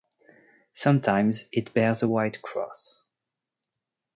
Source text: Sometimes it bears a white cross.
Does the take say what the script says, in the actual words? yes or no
yes